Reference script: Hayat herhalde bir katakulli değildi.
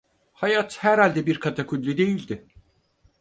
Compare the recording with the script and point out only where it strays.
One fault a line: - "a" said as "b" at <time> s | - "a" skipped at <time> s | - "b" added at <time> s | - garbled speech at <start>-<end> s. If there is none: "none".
none